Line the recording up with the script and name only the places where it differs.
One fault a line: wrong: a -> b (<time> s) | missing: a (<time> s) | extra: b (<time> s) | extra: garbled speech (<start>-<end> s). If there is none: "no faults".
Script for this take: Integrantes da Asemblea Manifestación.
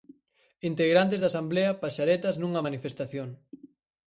extra: Paxaretas nunha (1.8 s)